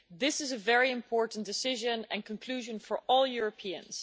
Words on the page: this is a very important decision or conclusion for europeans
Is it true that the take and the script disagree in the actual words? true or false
true